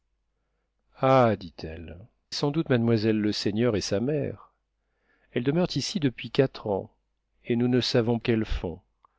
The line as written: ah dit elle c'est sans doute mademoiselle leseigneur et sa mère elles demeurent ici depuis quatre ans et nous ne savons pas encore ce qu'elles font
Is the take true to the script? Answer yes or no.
no